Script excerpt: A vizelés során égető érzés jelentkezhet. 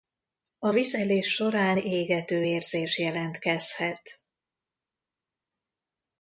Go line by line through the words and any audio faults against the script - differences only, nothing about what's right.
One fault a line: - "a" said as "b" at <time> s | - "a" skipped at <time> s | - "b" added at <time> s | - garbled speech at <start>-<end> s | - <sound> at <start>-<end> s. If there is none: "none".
none